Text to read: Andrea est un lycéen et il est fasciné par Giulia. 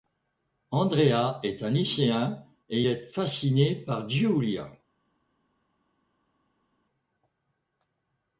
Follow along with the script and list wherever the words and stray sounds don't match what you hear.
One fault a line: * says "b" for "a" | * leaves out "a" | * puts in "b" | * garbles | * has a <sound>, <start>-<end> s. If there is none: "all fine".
* leaves out "il"